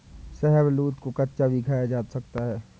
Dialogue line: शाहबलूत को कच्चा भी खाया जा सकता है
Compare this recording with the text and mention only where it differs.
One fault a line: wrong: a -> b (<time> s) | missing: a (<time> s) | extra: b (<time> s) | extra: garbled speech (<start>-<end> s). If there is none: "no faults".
no faults